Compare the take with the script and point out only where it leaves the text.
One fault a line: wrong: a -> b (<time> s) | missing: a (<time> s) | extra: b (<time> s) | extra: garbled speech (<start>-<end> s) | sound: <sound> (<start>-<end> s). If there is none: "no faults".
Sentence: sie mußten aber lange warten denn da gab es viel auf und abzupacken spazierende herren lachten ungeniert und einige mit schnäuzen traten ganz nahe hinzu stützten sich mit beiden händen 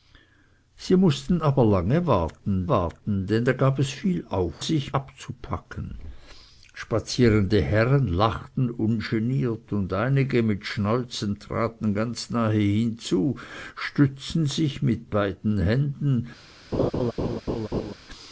extra: warten (2.7 s)
wrong: und -> sich (4.6 s)
sound: laugh (16.7-17.9 s)